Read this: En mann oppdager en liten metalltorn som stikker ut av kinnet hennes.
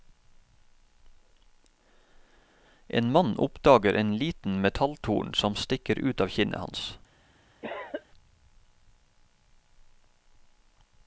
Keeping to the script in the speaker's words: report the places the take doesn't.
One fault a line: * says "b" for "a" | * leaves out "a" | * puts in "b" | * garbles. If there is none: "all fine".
* says "hans" for "hennes"